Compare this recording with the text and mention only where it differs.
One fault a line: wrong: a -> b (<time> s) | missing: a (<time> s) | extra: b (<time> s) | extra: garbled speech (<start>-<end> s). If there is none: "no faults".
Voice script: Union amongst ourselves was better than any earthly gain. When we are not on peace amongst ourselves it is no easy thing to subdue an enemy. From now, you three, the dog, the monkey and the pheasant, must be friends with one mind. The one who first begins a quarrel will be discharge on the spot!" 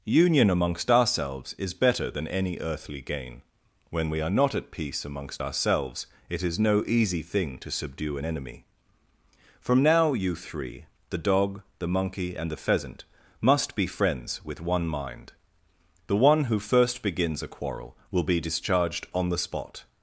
wrong: was -> is (1.6 s)
wrong: on -> at (4.5 s)
wrong: discharge -> discharged (18.4 s)